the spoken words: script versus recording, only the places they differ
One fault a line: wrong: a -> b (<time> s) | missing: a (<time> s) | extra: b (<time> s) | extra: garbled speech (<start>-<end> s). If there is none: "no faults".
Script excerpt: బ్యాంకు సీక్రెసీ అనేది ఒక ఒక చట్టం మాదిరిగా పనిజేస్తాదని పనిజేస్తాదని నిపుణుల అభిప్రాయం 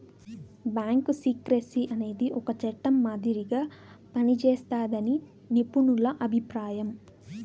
missing: ఒక (2.5 s)
missing: పనిజేస్తాదని (5.1 s)